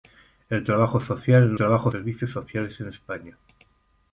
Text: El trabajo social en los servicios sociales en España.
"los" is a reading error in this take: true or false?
true